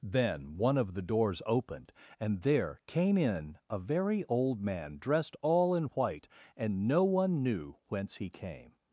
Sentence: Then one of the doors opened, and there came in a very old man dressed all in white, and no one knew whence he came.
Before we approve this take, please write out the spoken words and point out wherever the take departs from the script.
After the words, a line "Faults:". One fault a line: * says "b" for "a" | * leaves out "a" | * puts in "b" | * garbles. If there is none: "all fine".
Then one of the doors opened, and there came in a very old man dressed all in white, and no one knew whence he came.
Faults:
all fine